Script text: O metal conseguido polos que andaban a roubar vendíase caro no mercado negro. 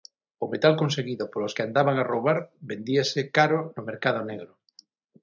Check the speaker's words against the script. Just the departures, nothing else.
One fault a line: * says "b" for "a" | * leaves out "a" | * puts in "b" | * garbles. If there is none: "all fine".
all fine